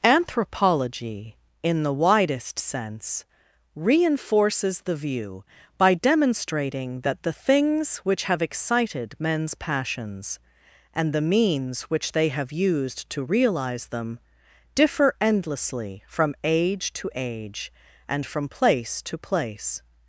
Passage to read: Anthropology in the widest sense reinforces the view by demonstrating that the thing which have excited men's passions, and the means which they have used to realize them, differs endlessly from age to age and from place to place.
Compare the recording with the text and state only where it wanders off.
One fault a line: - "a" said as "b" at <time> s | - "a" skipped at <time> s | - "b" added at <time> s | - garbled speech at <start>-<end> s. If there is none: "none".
- "thing" said as "things" at 7.3 s
- "differs" said as "differ" at 14.7 s